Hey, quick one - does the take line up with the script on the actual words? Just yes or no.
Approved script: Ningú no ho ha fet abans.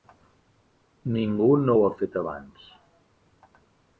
yes